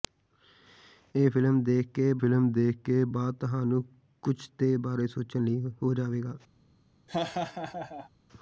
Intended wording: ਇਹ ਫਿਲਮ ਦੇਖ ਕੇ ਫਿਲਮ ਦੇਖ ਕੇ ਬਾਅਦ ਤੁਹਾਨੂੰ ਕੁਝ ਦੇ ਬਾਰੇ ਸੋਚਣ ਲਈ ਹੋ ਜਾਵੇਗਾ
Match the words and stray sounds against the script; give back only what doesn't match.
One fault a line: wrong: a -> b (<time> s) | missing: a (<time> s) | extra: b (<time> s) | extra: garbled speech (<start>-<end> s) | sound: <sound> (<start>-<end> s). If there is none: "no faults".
sound: laugh (7.1-8.1 s)